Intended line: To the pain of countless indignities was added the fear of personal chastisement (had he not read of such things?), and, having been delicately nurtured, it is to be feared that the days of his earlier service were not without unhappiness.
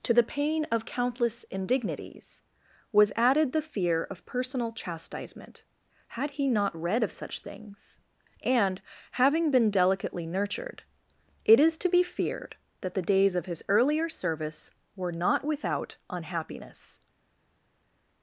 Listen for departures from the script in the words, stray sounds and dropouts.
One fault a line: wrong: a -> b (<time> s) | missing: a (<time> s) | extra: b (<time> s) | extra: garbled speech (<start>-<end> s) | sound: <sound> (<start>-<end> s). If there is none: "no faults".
no faults